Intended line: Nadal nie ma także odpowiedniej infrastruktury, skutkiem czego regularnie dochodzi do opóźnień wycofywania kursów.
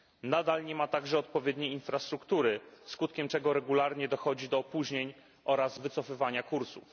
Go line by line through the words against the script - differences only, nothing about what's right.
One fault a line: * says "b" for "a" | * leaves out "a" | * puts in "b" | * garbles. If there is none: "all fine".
* puts in "oraz"